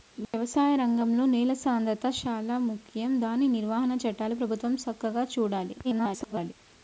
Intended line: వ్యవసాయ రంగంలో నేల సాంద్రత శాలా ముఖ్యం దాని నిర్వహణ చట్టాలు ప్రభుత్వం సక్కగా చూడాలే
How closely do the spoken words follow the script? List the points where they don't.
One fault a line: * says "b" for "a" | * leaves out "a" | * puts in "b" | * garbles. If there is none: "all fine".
* garbles